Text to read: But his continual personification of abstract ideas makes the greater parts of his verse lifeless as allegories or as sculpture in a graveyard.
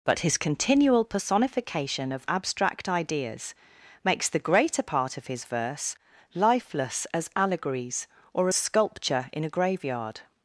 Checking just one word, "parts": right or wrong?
wrong